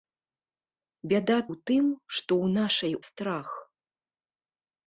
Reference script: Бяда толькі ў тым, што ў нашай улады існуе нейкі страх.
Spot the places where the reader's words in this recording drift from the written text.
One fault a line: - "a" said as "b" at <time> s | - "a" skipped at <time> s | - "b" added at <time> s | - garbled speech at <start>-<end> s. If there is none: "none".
- "толькі" skipped at 1.4 s
- "улады існуе нейкі" skipped at 2.9 s